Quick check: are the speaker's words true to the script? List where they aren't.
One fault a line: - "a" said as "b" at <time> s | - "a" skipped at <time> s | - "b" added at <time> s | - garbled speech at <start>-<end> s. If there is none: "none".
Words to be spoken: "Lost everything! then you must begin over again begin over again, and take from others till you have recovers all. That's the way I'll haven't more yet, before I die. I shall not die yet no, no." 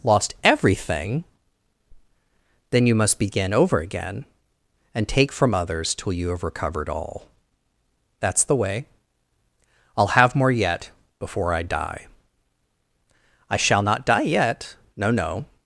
- "begin over again" skipped at 4.2 s
- "recovers" said as "recovered" at 6.4 s
- "haven't" said as "have" at 10.1 s